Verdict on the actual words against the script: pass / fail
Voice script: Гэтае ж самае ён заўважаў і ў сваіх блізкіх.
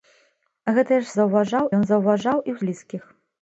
fail